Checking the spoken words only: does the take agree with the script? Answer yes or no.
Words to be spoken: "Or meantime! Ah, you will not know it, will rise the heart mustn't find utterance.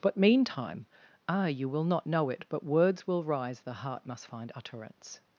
no